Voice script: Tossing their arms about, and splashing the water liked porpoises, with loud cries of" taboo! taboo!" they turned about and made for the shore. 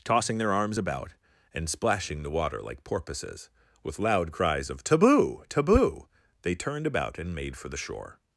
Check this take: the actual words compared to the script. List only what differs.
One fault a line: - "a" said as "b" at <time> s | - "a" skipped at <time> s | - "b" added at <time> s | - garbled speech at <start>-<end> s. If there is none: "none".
- "liked" said as "like" at 2.6 s